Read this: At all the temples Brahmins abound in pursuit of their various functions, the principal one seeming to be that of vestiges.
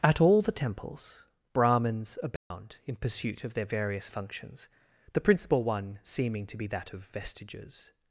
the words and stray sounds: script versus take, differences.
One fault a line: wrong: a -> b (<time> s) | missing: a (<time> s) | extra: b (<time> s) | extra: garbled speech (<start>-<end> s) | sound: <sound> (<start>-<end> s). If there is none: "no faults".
sound: dropout (2.4-2.5 s)